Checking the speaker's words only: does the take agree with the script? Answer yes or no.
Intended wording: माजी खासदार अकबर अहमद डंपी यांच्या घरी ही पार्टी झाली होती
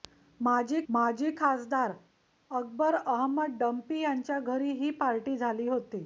no